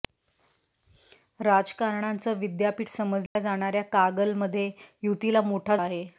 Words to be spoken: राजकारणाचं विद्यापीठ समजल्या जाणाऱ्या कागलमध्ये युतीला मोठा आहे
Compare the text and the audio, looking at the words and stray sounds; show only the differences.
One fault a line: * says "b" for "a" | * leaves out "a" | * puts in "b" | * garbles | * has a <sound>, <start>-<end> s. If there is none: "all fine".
* has a dropout, 3.3-3.4 s